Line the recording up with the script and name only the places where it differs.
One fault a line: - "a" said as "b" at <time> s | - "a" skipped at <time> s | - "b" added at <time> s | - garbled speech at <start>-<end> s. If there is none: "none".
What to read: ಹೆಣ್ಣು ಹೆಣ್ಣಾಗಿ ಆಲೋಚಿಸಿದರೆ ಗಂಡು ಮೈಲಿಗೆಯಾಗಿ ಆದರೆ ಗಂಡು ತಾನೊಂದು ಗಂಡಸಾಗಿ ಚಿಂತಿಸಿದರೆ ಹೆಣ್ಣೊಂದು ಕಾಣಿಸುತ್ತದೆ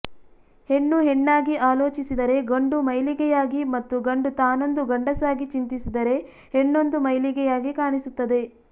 - "ಆದರೆ" said as "ಮತ್ತು" at 3.8 s
- "ಮೈಲಿಗೆಯಾಗಿ" added at 7.1 s